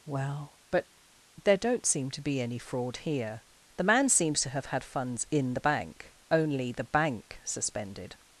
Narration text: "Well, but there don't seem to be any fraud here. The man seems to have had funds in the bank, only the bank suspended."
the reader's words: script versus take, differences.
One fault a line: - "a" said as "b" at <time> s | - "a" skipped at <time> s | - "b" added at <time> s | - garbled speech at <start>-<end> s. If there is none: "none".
none